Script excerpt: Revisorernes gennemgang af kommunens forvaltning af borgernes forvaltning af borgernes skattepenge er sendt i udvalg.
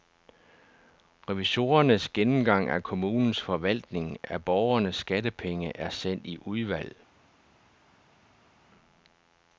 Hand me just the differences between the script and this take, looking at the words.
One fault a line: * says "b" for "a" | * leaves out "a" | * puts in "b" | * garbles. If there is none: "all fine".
* leaves out "forvaltning af borgernes"